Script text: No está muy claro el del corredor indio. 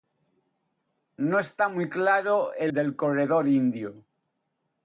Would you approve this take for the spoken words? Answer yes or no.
yes